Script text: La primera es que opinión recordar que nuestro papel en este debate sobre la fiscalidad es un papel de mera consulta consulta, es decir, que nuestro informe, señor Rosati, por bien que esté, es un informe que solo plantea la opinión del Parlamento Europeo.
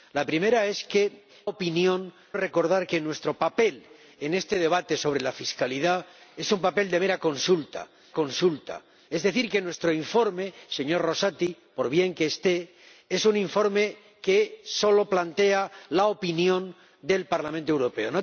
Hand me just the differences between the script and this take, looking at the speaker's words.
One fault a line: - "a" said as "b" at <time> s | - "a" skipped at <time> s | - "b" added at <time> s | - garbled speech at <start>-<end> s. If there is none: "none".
none